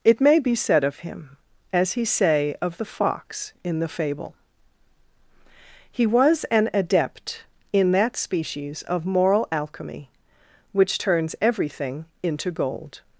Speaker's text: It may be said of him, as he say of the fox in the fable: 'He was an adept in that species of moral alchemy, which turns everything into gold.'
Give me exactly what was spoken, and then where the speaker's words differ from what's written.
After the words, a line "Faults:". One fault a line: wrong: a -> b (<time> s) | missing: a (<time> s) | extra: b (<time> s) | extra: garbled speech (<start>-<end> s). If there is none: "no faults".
It may be said of him, as he say of the fox in the fable: 'He was an adept in that species of moral alchemy, which turns everything into gold.'
Faults:
no faults